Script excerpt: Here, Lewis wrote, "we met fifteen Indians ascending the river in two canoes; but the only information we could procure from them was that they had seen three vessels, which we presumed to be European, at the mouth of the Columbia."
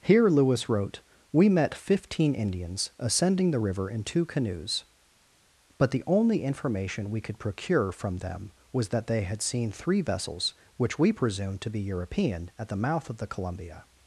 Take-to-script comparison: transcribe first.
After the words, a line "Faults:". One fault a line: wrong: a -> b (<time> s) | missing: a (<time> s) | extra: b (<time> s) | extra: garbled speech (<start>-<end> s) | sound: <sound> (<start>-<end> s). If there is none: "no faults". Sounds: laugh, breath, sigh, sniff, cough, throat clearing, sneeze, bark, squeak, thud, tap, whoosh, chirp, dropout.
Here, Lewis wrote, "we met fifteen Indians ascending the river in two canoes; but the only information we could procure from them was that they had seen three vessels, which we presumed to be European, at the mouth of the Columbia."
Faults:
no faults